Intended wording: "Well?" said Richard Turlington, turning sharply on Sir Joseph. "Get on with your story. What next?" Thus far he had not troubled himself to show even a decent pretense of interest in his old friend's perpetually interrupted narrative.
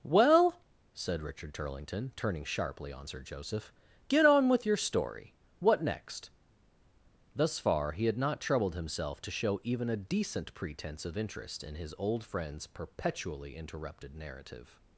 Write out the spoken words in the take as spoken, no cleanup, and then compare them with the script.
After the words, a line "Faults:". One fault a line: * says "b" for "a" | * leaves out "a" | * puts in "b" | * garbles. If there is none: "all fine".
"Well?" said Richard Turlington, turning sharply on Sir Joseph. "Get on with your story. What next?" Thus far he had not troubled himself to show even a decent pretense of interest in his old friend's perpetually interrupted narrative.
Faults:
all fine